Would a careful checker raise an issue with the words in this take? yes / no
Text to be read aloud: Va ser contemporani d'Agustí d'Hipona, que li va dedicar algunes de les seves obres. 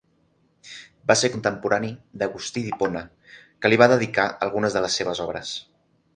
no